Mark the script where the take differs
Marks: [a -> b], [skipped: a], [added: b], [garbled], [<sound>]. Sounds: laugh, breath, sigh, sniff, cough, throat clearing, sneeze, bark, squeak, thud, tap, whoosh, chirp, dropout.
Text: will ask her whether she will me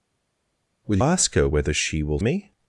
will ask her whether she will me